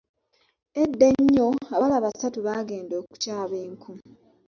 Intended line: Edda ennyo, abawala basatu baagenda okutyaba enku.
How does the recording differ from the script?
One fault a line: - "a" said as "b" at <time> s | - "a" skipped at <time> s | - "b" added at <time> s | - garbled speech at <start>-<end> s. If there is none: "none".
none